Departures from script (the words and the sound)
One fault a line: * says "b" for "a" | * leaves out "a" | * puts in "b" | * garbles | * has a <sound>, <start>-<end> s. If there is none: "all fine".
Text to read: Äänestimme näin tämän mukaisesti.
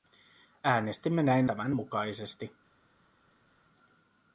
all fine